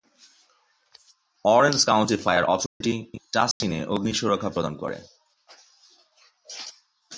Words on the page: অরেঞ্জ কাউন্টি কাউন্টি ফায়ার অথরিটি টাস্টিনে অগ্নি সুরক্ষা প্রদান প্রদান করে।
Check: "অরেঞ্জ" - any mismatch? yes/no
no